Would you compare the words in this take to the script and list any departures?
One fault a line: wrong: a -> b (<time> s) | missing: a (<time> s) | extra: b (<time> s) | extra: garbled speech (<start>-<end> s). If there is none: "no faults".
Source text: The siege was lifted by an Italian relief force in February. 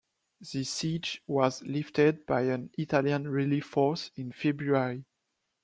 no faults